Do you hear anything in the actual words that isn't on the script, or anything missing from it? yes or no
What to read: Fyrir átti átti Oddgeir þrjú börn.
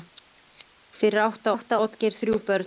no